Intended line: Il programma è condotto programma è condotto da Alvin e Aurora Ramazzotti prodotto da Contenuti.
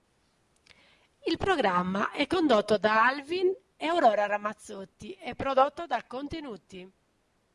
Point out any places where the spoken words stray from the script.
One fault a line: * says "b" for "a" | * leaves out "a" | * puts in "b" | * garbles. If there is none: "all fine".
* leaves out "programma è condotto"
* puts in "e"